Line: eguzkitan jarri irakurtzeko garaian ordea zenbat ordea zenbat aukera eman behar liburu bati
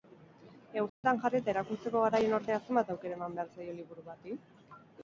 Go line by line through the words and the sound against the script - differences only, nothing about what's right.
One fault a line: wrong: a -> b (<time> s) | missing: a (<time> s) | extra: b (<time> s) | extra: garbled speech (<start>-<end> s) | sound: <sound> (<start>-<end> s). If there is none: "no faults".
sound: dropout (0.9-1.0 s)
extra: eta (1.4 s)
missing: ordea zenbat (2.9 s)
extra: zaio (3.6 s)